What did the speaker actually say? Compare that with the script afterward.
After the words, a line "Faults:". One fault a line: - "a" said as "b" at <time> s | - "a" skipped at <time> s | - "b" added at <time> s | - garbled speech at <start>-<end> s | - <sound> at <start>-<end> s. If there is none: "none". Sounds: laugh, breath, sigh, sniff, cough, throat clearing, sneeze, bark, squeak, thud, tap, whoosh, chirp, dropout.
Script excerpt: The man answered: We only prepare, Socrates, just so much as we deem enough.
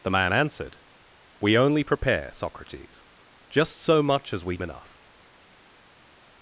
The man answered: We only prepare, Socrates, just so much as we enough.
Faults:
- "deem" skipped at 4.6 s